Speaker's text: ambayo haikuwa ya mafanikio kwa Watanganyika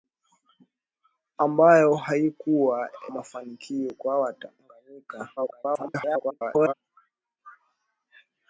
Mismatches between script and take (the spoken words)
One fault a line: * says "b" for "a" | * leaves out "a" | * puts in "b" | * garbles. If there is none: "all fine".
* leaves out "ya"
* garbles